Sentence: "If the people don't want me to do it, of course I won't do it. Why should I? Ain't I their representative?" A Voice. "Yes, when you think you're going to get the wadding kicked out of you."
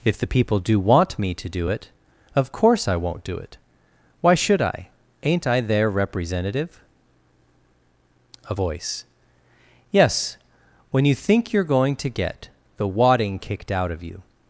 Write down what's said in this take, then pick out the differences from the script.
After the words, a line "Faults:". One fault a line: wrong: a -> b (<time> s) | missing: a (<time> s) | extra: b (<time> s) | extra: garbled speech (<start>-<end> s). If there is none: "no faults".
"If the people do want me to do it, of course I won't do it. Why should I? Ain't I their representative?" A Voice. "Yes, when you think you're going to get the wadding kicked out of you."
Faults:
wrong: don't -> do (0.6 s)